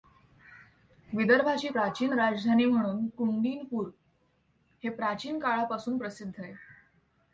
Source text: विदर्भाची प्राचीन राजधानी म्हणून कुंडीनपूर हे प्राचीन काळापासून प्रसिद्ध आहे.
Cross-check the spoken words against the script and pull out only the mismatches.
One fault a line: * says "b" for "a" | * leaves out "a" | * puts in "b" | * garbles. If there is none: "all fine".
all fine